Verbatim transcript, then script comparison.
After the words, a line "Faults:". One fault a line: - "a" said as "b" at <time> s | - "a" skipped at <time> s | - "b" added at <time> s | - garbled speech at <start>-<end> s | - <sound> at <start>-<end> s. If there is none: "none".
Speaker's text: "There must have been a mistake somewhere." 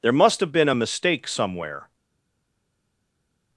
"There must have been a mistake somewhere."
Faults:
none